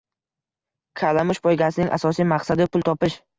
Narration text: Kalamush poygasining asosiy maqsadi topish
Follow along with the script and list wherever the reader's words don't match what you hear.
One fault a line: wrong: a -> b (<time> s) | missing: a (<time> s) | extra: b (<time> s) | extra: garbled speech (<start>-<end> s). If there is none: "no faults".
extra: pul (2.7 s)